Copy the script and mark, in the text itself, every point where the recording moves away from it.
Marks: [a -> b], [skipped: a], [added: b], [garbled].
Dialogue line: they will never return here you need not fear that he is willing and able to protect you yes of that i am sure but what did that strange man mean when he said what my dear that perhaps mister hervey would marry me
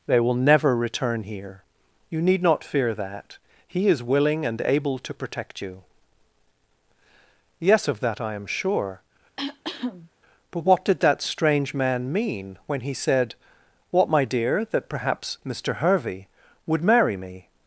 they will never return here you need not fear that he is willing and able to protect you yes of that i am sure but what did that strange man mean when he said what my dear that perhaps mister hervey would marry me